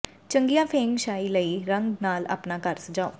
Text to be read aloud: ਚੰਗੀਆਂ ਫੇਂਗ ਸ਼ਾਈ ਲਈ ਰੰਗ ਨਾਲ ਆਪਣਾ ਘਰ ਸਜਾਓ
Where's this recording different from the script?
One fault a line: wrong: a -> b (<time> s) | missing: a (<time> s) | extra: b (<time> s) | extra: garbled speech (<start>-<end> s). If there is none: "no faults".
no faults